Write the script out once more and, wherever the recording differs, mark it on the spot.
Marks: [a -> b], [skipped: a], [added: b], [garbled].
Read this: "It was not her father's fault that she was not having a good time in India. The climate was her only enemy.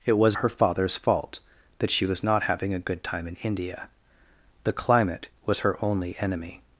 "It was [skipped: not] her father's fault that she was not having a good time in India. The climate was her only enemy.